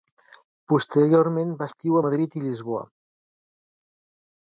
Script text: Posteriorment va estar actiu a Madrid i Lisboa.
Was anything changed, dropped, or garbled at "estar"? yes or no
yes